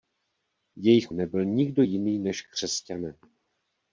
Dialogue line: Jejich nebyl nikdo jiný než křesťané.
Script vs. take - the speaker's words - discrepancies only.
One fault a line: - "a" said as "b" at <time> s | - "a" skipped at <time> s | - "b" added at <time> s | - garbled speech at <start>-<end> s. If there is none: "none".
none